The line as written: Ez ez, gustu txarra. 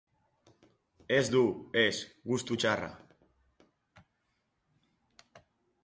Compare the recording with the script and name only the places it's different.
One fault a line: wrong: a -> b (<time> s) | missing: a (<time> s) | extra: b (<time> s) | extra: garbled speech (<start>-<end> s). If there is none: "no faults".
extra: du (1.3 s)